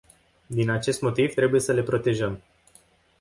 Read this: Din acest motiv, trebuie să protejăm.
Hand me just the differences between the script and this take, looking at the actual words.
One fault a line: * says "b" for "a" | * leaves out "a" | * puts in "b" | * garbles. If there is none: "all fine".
* puts in "le"